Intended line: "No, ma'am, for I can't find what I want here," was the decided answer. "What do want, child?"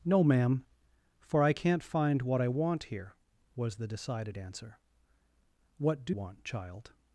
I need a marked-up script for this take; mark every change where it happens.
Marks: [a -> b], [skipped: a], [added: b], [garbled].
"No, ma'am, for I can't find what I want here," was the decided answer. "What do want, child?"